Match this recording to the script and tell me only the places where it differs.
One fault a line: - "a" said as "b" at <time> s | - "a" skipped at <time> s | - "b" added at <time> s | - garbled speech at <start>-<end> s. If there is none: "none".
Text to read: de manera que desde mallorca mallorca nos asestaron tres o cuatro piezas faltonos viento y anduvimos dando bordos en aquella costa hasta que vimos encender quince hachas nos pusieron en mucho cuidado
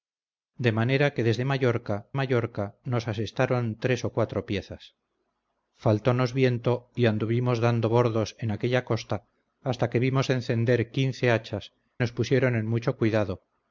none